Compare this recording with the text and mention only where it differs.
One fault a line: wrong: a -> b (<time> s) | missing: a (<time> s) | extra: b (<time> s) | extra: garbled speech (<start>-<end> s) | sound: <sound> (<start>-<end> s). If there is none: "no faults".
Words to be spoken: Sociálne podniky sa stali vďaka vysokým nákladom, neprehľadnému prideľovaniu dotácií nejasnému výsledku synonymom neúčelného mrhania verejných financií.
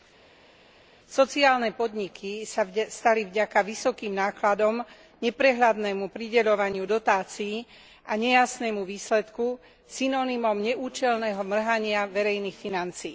extra: a (8.0 s)